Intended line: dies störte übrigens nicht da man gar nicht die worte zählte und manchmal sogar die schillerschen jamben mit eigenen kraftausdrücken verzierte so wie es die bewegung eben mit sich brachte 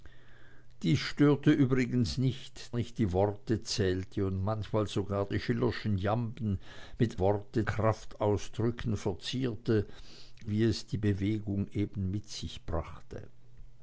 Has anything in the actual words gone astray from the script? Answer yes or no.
yes